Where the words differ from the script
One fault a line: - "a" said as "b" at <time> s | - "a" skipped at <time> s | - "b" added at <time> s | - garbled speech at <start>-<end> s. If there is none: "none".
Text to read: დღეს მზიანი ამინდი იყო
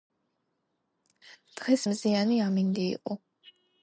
none